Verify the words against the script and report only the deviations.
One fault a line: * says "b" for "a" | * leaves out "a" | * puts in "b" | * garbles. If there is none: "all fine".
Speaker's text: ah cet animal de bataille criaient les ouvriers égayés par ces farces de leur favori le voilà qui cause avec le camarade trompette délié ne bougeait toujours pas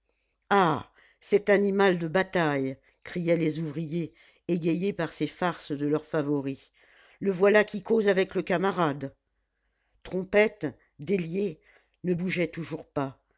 all fine